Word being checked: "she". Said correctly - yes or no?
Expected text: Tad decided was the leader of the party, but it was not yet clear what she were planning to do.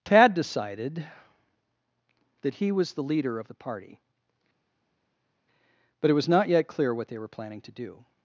no